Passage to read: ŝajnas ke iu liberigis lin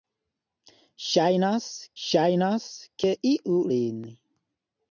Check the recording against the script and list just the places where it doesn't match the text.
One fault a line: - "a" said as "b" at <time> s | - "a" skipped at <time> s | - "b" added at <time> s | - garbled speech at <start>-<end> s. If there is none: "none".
- "ŝajnas" added at 2.0 s
- "liberigis" skipped at 3.6 s